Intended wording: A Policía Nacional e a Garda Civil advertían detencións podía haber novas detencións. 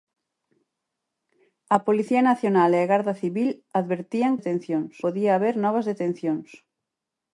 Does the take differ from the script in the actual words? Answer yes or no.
no